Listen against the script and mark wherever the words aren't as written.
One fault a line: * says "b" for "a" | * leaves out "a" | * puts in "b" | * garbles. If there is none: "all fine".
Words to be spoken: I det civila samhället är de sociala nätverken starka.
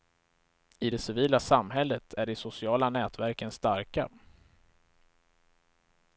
all fine